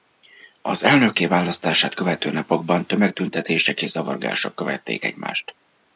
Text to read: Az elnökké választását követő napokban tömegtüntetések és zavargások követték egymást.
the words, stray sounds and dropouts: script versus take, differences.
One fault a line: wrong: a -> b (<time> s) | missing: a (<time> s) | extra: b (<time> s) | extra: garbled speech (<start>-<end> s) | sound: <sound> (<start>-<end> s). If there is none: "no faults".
no faults